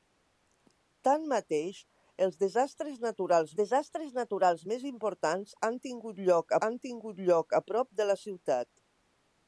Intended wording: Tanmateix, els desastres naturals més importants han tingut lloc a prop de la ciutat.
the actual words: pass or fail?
fail